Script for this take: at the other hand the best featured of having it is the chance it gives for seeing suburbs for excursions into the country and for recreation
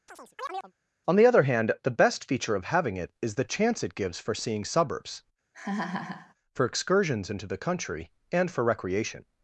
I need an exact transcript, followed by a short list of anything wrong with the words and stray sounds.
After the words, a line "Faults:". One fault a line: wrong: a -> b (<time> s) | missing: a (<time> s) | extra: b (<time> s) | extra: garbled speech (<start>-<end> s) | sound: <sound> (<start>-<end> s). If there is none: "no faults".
on the other hand the best feature of having it is the chance it gives for seeing suburbs for excursions into the country and for recreation
Faults:
sound: chirp (0.1-0.7 s)
wrong: at -> on (1.1 s)
wrong: featured -> feature (2.3 s)
sound: laugh (5.5-6.3 s)